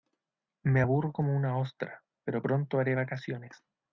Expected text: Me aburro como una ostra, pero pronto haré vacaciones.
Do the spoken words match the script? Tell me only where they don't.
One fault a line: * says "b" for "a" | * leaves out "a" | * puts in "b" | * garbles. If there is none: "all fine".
all fine